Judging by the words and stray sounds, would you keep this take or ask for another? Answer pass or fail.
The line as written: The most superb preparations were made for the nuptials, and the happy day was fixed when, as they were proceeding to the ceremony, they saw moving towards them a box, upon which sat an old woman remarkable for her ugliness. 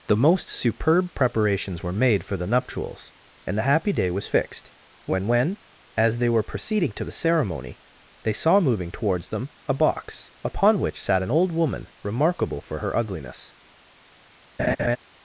fail